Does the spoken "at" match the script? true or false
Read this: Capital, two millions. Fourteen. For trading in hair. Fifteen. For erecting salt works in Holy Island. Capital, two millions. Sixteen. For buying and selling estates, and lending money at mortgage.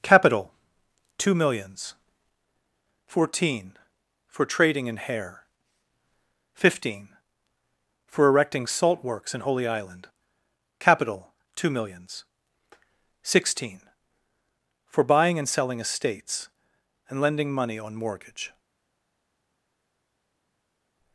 false